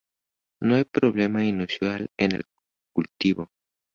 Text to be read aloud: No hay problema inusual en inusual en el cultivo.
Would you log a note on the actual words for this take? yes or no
yes